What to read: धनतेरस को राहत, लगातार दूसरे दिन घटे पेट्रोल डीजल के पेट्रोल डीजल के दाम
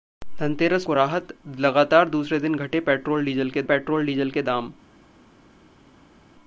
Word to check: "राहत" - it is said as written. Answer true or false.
true